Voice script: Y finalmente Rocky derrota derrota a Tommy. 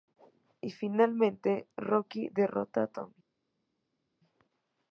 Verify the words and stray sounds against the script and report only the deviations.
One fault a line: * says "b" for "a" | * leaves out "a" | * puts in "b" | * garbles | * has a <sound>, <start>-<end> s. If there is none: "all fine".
* leaves out "derrota"